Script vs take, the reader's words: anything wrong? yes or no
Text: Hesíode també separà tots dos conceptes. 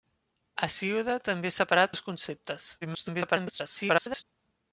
yes